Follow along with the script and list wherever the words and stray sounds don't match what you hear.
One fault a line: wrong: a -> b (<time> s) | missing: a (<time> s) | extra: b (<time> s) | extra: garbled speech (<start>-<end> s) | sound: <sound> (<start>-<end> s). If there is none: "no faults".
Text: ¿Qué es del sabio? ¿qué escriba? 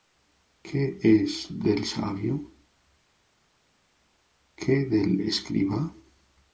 extra: del (4.8 s)